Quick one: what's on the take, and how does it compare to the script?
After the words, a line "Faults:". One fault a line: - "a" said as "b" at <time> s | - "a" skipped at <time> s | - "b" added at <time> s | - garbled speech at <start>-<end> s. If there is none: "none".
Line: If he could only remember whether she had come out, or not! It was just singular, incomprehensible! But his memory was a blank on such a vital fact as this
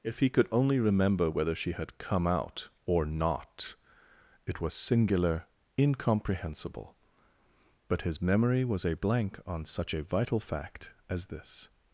If he could only remember whether she had come out, or not! It was singular, incomprehensible! But his memory was a blank on such a vital fact as this
Faults:
- "just" skipped at 4.7 s